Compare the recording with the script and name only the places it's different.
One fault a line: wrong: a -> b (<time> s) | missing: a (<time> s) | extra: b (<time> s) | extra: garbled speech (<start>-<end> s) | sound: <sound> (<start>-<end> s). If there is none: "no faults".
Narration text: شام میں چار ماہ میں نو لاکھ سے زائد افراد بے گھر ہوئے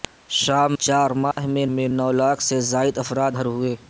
missing: میں (0.7 s)
sound: dropout (1.3-1.4 s)
extra: میں (1.7 s)
missing: بے (3.3 s)